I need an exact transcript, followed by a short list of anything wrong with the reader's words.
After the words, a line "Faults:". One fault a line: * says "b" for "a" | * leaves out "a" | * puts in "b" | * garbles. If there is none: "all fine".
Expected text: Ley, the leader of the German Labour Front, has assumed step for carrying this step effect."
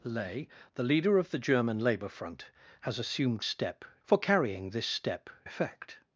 Ley, the leader of the German Labour Front, has assumed step for carrying this step effect."
Faults:
all fine